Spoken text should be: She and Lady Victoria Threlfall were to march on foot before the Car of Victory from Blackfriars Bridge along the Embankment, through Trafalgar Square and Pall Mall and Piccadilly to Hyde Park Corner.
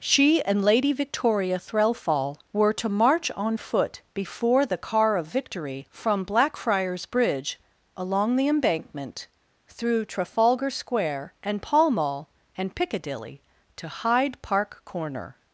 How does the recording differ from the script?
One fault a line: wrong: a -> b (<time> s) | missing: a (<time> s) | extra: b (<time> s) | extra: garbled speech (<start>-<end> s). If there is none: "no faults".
no faults